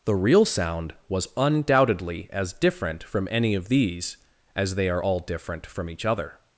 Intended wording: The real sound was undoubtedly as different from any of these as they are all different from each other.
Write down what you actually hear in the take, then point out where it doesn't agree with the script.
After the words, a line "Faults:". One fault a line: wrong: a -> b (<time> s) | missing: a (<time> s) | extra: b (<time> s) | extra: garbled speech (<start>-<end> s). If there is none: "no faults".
The real sound was undoubtedly as different from any of these as they are all different from each other.
Faults:
no faults